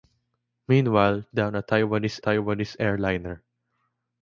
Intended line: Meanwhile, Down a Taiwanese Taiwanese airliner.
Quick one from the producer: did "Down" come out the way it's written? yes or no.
yes